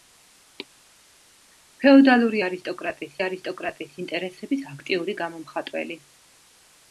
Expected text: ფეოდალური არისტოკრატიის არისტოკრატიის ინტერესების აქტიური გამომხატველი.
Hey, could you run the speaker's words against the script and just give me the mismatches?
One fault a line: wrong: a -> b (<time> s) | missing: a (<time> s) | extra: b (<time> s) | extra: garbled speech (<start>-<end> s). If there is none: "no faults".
no faults